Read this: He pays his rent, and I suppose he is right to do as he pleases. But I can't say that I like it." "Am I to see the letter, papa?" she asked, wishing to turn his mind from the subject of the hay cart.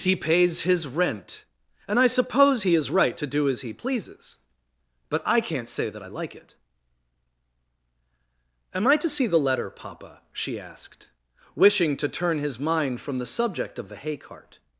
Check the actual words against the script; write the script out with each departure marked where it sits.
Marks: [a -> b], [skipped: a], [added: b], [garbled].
He pays his rent, and I suppose he is right to do as he pleases. But I can't say that I like it." "Am I to see the letter, papa?" she asked, wishing to turn his mind from the subject of the hay cart.